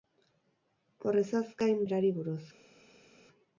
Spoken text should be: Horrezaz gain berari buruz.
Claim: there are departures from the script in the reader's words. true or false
false